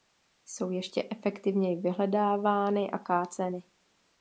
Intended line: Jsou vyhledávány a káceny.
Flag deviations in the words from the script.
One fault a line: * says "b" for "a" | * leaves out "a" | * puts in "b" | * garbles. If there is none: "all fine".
* puts in "ještě efektivněji"